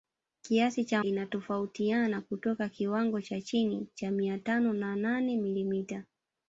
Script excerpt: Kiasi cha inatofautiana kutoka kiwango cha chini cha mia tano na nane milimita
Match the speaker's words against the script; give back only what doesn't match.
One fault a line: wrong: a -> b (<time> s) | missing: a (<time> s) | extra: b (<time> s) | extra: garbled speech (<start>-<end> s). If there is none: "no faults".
no faults